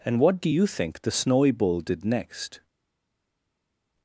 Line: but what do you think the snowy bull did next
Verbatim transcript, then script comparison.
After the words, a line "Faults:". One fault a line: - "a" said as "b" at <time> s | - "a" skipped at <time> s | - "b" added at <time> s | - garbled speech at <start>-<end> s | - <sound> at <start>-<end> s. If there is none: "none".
and what do you think the snowy bull did next
Faults:
- "but" said as "and" at 0.0 s